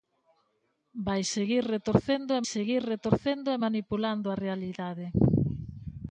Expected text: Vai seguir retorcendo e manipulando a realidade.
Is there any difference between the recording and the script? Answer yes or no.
yes